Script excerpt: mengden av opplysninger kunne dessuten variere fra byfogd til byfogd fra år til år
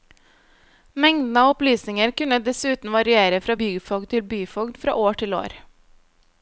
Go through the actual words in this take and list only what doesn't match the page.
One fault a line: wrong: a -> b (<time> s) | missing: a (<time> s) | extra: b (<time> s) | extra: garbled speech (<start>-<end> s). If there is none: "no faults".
no faults